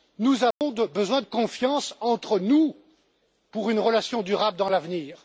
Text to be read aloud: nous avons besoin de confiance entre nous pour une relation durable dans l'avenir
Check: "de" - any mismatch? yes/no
yes